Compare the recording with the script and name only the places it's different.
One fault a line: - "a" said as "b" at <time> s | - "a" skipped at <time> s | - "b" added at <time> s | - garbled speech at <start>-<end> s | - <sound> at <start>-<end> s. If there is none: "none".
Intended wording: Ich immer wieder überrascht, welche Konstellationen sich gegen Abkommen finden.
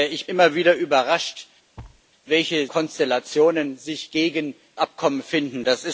- thud at 1.8-2.0 s